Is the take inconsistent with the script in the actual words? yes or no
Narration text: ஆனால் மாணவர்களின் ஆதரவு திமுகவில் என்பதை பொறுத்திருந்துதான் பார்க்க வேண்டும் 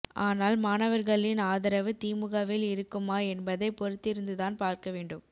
yes